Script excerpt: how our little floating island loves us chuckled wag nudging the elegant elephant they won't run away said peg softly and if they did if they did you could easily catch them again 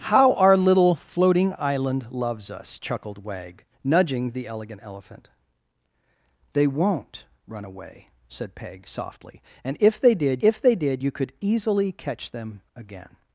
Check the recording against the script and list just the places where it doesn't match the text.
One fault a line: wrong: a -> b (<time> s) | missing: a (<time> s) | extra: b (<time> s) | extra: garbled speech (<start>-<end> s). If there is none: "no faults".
no faults